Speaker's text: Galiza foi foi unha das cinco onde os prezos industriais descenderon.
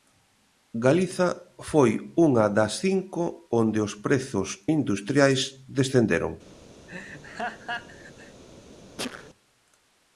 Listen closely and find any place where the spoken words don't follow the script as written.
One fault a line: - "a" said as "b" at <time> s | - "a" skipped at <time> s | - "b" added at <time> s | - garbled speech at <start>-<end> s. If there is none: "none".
- "foi" skipped at 1.9 s